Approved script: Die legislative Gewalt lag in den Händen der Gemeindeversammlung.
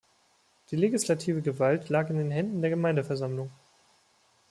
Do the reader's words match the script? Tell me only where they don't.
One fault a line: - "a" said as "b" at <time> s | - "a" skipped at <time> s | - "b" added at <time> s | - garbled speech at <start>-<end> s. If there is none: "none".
none